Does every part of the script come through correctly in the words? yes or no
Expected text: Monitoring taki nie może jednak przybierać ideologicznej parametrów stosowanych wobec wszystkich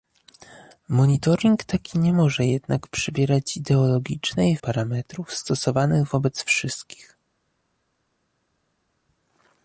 yes